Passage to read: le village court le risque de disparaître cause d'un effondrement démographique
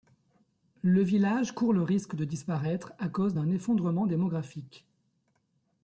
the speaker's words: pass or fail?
fail